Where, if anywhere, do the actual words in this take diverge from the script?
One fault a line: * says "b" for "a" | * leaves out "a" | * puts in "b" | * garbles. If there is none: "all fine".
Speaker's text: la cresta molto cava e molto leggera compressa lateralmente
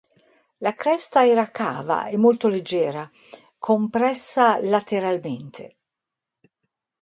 * says "era" for "molto"